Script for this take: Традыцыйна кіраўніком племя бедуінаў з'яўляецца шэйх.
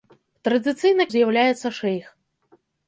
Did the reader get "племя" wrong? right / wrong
wrong